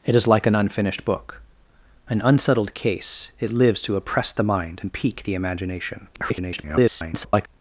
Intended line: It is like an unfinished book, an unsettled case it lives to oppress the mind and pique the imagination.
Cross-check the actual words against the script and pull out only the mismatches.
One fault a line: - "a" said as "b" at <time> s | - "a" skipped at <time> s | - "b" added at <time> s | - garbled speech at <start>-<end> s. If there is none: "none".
- garbled speech at 6.1-7.5 s